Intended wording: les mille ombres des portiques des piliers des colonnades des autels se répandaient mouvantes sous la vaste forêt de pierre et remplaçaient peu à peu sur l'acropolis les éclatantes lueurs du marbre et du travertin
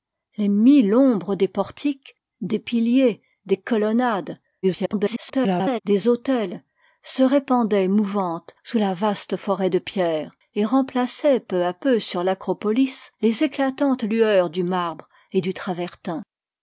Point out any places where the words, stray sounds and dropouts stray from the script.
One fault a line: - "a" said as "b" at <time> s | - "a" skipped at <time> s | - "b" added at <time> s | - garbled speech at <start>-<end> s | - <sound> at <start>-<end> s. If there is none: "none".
- garbled speech at 4.6-5.8 s